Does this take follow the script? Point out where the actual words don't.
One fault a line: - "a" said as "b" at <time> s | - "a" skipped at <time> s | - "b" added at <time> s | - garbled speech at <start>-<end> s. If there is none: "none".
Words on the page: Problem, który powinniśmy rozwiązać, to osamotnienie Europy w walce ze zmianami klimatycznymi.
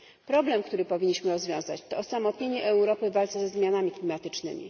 none